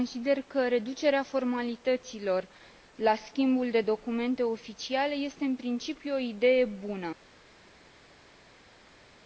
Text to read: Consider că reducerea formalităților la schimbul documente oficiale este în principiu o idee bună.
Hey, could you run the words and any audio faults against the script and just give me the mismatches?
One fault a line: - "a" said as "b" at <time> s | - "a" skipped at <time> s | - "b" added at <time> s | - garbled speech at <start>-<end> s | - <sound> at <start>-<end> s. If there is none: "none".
- "de" added at 3.7 s